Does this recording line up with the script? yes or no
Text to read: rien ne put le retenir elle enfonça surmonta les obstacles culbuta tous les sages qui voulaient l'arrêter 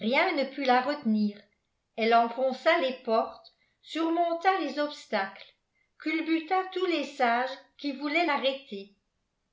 no